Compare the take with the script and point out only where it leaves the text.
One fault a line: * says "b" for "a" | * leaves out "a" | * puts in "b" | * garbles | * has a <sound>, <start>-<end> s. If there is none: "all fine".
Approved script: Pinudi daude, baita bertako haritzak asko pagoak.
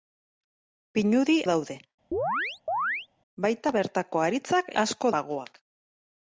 * has a chirp, 2.1-3.1 s